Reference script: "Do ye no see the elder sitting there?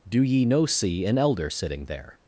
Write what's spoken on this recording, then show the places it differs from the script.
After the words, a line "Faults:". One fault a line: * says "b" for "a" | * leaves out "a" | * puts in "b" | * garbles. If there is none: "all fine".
"Do ye no see an elder sitting there?
Faults:
* says "an" for "the"